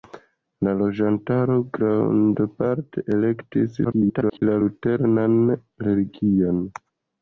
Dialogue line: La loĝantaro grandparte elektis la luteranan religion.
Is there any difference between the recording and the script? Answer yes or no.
yes